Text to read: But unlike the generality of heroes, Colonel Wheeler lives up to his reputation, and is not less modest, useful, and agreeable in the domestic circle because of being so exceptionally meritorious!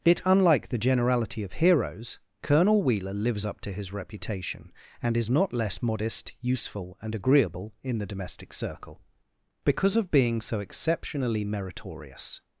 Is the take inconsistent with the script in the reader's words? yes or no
yes